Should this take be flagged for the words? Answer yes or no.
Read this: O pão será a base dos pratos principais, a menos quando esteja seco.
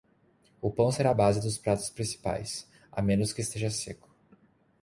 yes